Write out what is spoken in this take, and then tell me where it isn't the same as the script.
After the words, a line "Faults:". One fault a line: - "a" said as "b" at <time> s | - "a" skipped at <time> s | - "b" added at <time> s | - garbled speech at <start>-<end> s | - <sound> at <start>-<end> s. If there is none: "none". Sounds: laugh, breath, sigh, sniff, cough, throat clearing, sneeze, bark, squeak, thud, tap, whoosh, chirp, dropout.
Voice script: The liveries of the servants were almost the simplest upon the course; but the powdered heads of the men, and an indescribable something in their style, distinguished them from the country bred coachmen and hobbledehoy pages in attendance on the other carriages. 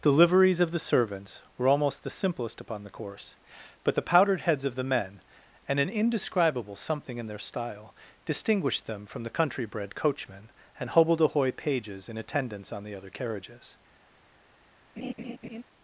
The liveries of the servants were almost the simplest upon the course; but the powdered heads of the men, and an indescribable something in their style, distinguished them from the country bred coachmen and hobbledehoy pages in attendance on the other carriages.
Faults:
- laugh at 15.0-15.6 s